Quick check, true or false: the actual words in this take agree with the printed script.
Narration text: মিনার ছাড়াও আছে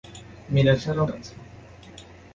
true